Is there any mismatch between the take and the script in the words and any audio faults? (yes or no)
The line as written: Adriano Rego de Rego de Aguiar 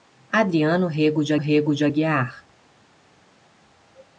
no